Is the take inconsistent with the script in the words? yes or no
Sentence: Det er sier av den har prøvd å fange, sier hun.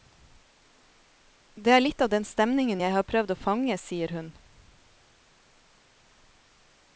yes